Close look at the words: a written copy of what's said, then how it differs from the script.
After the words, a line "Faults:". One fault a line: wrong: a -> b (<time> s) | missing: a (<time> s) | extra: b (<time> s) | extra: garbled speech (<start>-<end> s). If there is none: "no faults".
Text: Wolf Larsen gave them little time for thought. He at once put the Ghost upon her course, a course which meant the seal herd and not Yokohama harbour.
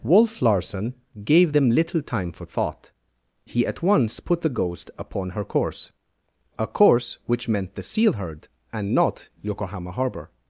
Wolf Larsen gave them little time for thought. He at once put the Ghost upon her course, a course which meant the seal herd and not Yokohama harbour.
Faults:
no faults